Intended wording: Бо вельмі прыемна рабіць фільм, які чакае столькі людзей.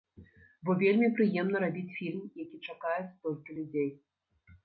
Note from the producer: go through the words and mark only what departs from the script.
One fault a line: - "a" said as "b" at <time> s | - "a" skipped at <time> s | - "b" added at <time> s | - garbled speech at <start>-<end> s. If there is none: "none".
none